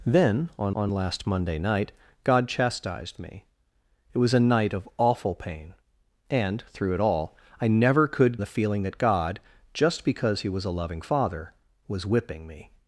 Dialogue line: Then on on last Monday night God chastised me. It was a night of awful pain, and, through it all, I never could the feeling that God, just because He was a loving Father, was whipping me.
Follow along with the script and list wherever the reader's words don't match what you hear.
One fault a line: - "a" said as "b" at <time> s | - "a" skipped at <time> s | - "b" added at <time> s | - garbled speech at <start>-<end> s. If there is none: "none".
none